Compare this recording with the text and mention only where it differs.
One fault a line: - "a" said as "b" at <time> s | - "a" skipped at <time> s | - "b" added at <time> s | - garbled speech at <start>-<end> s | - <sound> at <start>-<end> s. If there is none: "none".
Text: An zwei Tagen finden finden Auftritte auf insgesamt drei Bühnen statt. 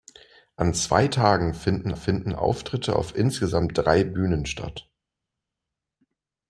none